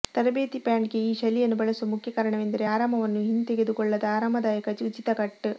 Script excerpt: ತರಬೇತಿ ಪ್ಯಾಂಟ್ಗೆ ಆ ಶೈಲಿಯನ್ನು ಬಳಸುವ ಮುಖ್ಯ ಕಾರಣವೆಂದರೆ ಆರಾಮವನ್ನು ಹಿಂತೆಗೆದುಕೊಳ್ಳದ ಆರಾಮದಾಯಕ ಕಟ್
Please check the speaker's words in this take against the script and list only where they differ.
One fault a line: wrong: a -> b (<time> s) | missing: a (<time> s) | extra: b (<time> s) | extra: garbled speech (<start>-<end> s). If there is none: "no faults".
wrong: ಆ -> ಈ (1.0 s)
extra: ಉಚಿತ (4.8 s)